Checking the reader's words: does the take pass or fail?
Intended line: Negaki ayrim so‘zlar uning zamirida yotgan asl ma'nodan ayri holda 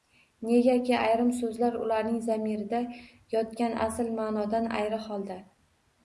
fail